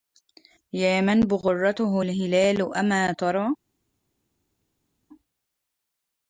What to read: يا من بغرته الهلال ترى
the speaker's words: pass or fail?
fail